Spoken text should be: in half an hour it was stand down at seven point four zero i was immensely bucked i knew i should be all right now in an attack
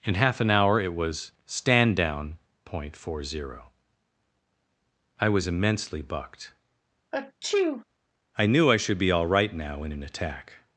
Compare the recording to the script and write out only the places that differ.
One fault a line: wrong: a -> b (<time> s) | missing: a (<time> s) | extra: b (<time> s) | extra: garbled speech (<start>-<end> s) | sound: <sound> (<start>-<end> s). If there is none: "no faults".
missing: at seven (2.4 s)
sound: sneeze (7.1-7.8 s)